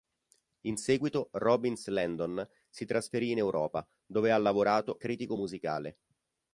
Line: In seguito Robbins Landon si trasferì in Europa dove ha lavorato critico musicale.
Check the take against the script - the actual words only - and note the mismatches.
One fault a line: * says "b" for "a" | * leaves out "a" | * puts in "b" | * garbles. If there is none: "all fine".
all fine